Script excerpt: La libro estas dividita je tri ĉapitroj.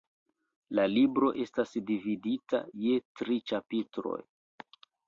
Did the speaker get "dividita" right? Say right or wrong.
right